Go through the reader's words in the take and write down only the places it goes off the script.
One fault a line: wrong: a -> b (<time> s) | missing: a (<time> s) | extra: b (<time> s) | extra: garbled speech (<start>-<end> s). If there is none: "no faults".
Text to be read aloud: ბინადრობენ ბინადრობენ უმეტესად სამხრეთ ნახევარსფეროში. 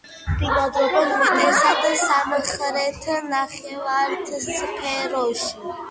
missing: ბინადრობენ (1.1 s)